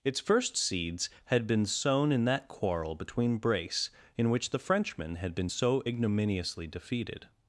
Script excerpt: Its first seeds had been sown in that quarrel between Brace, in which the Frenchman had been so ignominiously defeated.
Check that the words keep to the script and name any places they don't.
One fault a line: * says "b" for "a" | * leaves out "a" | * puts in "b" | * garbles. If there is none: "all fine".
all fine